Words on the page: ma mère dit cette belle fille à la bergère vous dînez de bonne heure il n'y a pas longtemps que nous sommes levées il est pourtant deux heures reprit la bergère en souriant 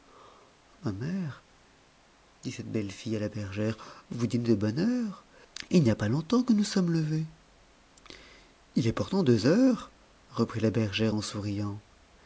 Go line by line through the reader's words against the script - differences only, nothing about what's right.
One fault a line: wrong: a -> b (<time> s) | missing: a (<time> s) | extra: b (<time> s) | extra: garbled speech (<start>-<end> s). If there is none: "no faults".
no faults